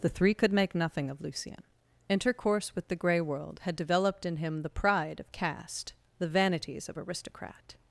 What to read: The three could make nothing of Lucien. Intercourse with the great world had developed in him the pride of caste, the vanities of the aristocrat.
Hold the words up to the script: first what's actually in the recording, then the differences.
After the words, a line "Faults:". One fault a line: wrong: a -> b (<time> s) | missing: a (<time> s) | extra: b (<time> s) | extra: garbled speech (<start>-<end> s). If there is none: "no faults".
The three could make nothing of Lucien. Intercourse with the grey world had developed in him the pride of caste, the vanities of aristocrat.
Faults:
wrong: great -> grey (3.0 s)
missing: the (7.0 s)